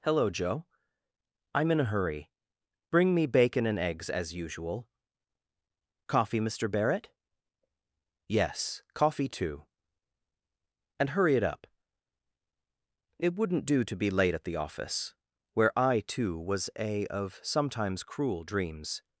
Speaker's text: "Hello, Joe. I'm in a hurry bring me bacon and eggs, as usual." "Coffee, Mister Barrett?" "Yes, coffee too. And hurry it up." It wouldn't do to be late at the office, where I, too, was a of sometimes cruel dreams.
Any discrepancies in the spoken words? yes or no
no